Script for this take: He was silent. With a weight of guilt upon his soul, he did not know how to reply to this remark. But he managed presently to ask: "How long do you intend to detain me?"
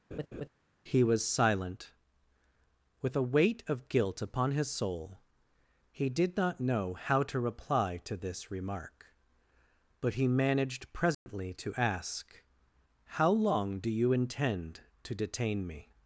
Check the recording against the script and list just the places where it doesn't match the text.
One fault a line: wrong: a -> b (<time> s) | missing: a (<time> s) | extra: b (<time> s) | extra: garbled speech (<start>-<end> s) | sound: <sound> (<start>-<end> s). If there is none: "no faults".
sound: laugh (0.1-0.5 s)
sound: dropout (11.1-11.3 s)